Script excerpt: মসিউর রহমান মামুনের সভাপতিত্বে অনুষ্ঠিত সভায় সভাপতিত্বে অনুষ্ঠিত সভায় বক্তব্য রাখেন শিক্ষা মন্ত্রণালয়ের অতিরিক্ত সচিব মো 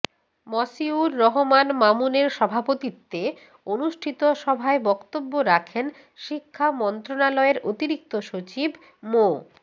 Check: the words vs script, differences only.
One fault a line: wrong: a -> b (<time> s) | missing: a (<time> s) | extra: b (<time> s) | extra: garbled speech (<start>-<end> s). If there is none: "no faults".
missing: সভাপতিত্বে অনুষ্ঠিত সভায় (4.8 s)